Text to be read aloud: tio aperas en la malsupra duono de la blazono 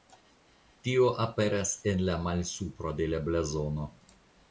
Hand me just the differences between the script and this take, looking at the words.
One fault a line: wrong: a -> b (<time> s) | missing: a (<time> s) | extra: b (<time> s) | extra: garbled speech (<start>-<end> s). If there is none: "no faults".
missing: duono (3.0 s)